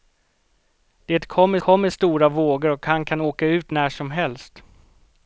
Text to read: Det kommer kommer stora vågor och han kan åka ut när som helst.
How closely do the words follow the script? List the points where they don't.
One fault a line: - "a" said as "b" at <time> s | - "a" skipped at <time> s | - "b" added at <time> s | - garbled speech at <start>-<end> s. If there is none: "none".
none